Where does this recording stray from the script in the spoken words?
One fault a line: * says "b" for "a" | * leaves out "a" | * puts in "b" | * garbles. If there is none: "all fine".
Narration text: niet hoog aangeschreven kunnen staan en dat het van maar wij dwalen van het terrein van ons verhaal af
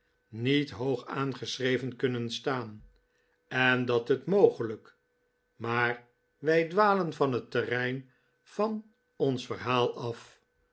* says "mogelijk" for "van"